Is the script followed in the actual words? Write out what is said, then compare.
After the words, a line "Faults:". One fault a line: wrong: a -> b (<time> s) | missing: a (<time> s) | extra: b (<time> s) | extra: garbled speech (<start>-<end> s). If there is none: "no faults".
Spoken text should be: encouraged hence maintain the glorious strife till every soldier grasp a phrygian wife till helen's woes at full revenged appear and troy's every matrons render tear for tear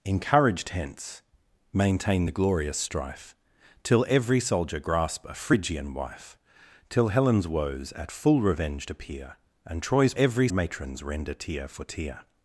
encouraged hence maintain the glorious strife till every soldier grasp a phrygian wife till helen's woes at full revenged appear and troy's every matrons render tear for tear
Faults:
no faults